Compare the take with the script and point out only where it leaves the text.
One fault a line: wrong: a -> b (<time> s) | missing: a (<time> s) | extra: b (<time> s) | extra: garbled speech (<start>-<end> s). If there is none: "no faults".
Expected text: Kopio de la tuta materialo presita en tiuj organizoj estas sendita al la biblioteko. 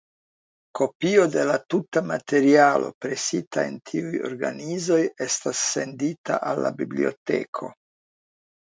no faults